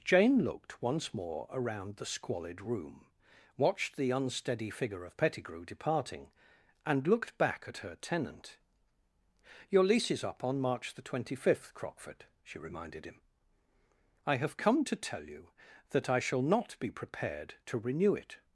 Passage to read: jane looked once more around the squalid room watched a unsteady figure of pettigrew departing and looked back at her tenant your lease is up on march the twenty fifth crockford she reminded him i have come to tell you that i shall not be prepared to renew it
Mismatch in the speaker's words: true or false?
true